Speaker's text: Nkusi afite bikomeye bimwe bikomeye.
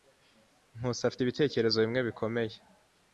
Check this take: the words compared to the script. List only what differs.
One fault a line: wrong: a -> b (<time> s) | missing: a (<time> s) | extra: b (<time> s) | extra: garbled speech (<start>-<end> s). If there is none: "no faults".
wrong: bikomeye -> ibitekerezo (1.2 s)